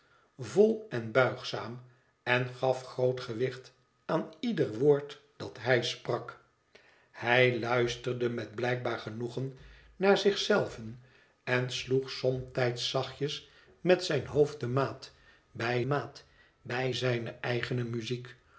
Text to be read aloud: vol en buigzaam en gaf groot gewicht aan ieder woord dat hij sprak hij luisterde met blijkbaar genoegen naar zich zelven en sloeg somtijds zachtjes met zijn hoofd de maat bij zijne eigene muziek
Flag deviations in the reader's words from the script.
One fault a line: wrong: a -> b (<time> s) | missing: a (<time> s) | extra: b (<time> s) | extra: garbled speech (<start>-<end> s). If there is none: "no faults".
extra: maat bij (15.8 s)